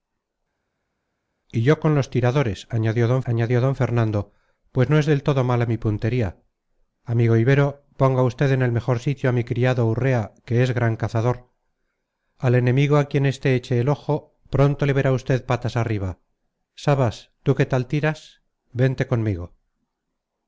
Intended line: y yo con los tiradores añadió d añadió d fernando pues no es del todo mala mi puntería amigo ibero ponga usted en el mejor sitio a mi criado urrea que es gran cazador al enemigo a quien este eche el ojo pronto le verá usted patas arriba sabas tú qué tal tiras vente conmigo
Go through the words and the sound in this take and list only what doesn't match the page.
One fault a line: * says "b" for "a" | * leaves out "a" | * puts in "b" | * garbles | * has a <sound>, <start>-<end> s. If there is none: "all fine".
all fine